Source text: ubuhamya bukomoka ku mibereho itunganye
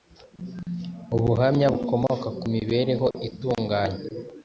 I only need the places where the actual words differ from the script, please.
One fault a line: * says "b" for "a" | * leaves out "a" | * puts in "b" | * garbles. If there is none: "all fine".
all fine